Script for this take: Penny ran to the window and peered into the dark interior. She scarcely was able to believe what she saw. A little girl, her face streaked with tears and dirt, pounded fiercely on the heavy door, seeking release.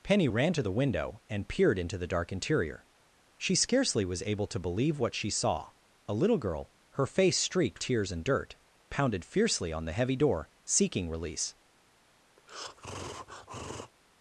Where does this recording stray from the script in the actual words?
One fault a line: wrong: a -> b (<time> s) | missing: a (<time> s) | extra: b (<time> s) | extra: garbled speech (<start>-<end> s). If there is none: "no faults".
missing: with (7.8 s)